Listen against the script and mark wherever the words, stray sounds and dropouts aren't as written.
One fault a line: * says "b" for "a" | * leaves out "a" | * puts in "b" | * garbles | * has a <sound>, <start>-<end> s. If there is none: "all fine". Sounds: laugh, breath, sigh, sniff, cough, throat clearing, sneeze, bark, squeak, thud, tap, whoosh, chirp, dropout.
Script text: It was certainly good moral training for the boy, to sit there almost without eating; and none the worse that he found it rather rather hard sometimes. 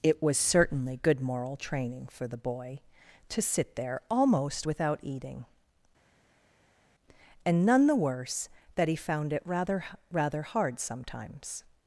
all fine